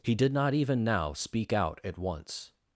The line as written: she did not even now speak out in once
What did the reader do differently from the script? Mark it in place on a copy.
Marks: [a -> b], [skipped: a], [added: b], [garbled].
[she -> he] did not even now speak out [in -> at] once